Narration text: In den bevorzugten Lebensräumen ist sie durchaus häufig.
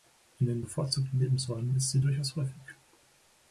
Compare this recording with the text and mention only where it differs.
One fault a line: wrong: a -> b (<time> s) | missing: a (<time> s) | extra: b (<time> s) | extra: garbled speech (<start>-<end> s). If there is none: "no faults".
no faults